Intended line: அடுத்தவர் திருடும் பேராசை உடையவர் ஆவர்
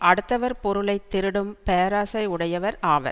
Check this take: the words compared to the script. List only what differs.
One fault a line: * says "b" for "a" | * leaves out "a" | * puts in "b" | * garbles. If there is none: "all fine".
* puts in "பொருளை"